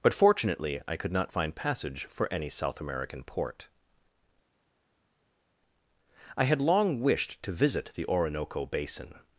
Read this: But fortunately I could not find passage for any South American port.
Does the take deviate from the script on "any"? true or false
false